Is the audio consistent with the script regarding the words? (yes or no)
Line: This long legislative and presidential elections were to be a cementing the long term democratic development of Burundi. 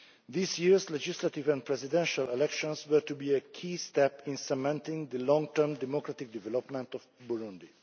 no